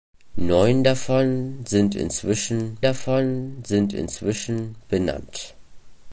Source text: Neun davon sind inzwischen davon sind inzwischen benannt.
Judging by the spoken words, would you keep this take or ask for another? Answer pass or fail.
pass